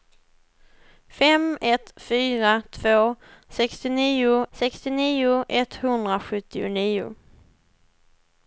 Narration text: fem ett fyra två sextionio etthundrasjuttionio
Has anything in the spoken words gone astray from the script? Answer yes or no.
yes